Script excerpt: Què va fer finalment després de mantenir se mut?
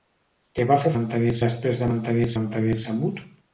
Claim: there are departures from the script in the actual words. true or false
true